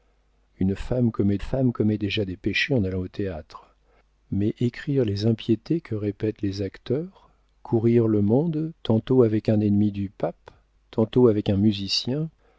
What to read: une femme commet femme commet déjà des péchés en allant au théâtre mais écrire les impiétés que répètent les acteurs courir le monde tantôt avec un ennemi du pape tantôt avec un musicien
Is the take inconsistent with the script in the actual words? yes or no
no